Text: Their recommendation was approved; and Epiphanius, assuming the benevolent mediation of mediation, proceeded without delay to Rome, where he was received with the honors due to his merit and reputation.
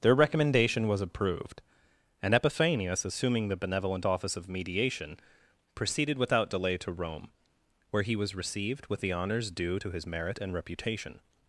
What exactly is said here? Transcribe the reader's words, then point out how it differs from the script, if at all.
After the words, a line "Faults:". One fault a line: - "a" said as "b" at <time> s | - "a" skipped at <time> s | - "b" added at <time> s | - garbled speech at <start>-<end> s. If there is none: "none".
Their recommendation was approved; and Epiphanius, assuming the benevolent office of mediation, proceeded without delay to Rome, where he was received with the honors due to his merit and reputation.
Faults:
- "mediation" said as "office" at 4.0 s